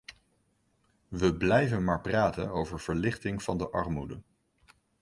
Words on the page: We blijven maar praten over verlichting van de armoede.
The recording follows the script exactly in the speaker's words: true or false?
true